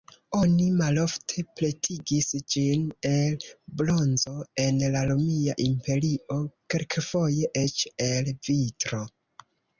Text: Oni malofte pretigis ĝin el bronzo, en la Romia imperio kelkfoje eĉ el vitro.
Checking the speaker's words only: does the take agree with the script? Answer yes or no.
yes